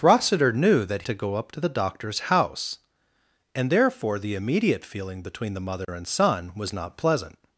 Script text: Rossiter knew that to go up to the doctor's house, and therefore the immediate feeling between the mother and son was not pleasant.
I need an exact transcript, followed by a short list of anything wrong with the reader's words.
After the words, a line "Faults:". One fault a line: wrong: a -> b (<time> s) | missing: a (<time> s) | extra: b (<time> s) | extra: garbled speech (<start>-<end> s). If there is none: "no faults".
Rossiter knew that to go up to the doctor's house, and therefore the immediate feeling between the mother and son was not pleasant.
Faults:
no faults